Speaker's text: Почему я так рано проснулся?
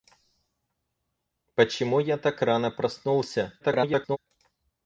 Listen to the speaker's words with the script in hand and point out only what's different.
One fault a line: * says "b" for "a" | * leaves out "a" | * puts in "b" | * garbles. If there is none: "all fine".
* garbles